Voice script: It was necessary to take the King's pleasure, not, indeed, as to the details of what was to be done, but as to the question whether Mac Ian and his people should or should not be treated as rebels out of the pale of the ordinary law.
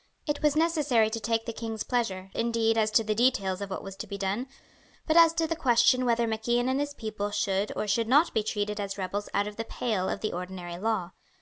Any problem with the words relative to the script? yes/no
yes